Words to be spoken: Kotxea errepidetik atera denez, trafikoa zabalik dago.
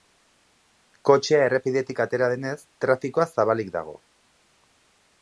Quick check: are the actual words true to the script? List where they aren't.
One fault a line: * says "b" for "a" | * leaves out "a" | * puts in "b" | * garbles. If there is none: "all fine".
all fine